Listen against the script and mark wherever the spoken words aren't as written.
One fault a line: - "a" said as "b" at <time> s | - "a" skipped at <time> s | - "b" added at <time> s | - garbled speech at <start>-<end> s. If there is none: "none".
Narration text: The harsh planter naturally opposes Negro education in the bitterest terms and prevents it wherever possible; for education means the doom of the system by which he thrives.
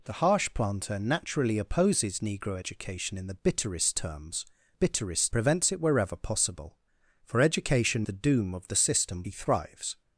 - "and" said as "bitterest" at 4.7 s
- "means" skipped at 8.1 s
- "by which" skipped at 9.2 s